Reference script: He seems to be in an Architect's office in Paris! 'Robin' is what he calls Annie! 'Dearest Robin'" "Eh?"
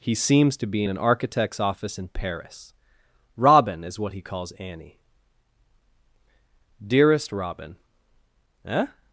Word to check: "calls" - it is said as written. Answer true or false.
true